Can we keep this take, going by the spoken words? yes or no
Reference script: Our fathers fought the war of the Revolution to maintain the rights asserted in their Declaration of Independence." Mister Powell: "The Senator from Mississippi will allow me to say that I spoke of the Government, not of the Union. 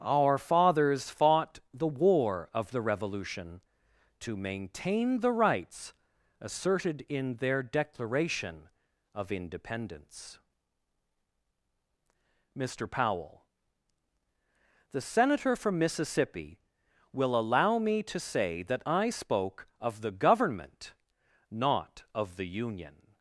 yes